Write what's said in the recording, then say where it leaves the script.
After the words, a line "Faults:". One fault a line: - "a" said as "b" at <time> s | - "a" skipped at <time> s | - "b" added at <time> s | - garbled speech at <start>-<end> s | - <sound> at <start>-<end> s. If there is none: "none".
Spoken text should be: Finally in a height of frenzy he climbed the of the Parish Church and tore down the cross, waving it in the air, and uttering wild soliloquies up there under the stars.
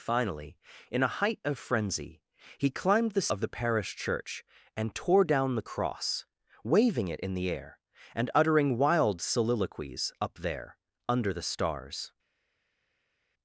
Finally in a height of frenzy he climbed the of the Parish Church and tore down the cross, waving it in the air, and uttering wild soliloquies up there under the stars.
Faults:
none